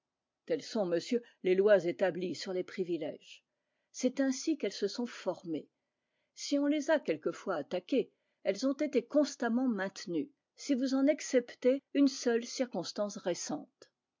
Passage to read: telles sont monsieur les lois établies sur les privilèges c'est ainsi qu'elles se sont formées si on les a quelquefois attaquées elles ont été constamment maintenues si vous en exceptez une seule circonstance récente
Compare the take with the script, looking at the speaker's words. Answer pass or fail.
pass